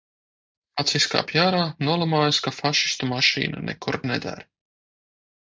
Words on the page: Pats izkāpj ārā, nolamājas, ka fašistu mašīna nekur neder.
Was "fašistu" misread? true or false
false